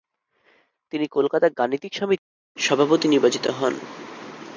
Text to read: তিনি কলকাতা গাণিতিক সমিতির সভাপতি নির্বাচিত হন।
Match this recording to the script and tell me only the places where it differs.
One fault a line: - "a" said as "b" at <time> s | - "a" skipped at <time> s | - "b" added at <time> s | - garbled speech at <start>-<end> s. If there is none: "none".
none